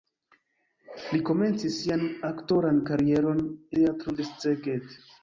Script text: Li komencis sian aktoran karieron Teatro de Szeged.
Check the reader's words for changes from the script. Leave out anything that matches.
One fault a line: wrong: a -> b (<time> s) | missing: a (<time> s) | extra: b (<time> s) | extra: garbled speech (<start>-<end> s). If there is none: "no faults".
no faults